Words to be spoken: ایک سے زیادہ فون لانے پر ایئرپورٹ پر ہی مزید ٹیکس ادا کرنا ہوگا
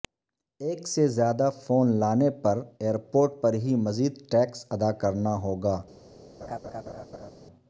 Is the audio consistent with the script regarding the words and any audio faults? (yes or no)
no